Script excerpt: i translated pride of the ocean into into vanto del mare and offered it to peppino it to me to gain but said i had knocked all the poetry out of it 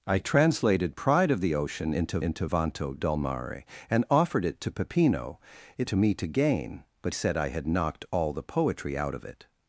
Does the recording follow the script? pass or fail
pass